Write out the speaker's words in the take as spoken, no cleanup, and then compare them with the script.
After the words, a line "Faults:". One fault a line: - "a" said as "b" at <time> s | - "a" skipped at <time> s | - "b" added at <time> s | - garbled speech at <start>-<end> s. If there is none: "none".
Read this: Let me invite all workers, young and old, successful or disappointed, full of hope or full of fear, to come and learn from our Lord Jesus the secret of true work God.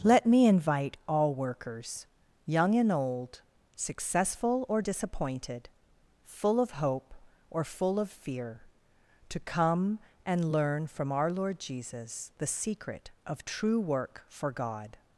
Let me invite all workers, young and old, successful or disappointed, full of hope or full of fear, to come and learn from our Lord Jesus the secret of true work for God.
Faults:
- "for" added at 14.3 s